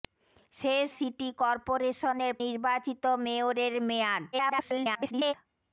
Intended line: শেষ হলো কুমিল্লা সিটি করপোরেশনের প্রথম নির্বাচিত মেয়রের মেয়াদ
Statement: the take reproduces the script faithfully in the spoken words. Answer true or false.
false